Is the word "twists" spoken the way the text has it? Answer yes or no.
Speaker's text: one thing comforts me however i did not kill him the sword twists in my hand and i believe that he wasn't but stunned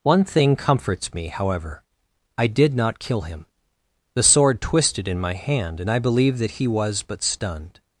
no